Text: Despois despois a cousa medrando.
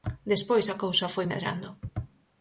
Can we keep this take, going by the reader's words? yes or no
no